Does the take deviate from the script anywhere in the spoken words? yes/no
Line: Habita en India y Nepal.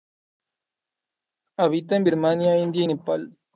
yes